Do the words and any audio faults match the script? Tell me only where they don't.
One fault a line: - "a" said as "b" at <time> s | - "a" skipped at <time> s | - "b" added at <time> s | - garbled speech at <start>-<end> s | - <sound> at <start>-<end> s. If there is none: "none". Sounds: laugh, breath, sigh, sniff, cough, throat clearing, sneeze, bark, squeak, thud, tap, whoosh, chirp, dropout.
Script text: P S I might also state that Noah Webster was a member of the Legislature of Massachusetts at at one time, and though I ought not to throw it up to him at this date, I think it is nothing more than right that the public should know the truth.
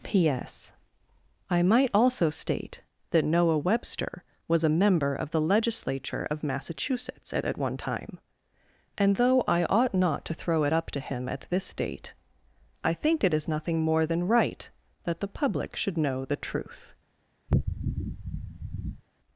- sniff at 17.5-19.0 s